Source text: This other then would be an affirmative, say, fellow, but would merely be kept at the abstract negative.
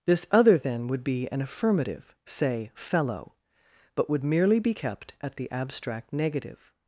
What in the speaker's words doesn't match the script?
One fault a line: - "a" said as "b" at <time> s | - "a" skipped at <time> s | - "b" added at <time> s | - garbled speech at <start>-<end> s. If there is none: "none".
none